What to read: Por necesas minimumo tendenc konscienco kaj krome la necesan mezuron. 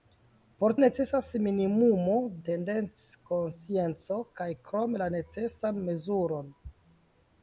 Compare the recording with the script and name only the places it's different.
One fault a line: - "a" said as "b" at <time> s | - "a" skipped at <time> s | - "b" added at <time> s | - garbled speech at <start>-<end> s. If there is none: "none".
none